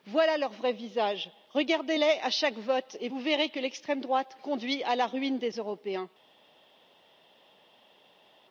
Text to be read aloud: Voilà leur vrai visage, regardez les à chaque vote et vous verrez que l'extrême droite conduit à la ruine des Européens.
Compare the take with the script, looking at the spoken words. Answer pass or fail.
pass